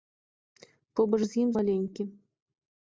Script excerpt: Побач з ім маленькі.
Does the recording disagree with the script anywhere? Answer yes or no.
no